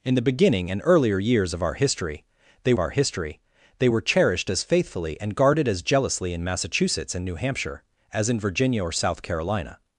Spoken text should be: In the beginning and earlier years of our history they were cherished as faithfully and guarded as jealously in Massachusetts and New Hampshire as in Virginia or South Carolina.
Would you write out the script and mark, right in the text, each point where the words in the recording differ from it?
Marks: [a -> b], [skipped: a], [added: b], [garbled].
In the beginning and earlier years of our history they [added: our history they] were cherished as faithfully and guarded as jealously in Massachusetts and New Hampshire as in Virginia or South Carolina.